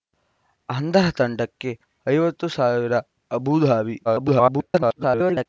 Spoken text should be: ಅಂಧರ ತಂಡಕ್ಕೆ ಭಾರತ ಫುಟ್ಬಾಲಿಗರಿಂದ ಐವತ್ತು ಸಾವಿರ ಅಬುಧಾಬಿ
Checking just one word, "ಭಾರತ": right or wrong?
wrong